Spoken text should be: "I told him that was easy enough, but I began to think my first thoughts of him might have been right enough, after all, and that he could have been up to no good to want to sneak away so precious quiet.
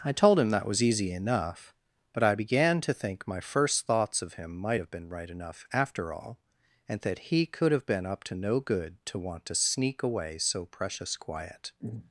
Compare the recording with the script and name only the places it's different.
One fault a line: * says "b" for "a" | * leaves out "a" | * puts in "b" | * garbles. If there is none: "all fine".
all fine